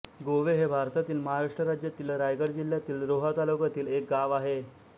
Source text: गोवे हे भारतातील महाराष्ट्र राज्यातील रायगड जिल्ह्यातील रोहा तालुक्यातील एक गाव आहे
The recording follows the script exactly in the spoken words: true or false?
true